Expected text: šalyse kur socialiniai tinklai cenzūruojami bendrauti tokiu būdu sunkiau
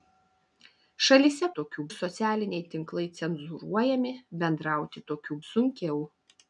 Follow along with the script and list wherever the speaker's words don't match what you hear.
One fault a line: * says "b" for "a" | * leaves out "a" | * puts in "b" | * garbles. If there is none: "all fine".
* says "tokiu" for "kur"
* leaves out "būdu"